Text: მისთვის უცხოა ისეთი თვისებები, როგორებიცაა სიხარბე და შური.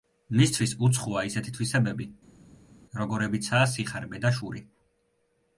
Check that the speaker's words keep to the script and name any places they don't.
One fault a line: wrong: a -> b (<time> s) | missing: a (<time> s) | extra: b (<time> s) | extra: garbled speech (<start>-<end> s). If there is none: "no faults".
no faults